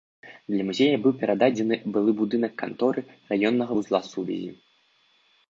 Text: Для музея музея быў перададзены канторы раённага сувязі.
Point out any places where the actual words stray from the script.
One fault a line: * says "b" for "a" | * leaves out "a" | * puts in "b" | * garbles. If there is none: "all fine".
* leaves out "музея"
* puts in "былы будынак"
* puts in "вузла"